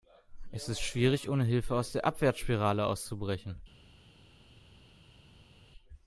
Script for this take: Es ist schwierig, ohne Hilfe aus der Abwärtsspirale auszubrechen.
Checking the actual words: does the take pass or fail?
pass